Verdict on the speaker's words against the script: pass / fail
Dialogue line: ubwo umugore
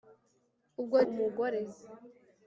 pass